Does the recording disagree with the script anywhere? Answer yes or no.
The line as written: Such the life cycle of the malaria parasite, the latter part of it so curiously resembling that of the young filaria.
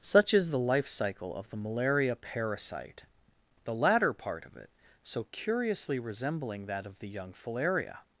yes